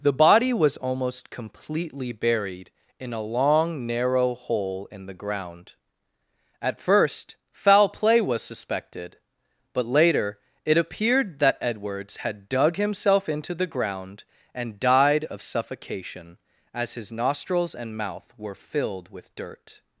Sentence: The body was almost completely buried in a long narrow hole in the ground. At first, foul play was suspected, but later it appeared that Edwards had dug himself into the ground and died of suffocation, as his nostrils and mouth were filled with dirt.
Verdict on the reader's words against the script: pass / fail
pass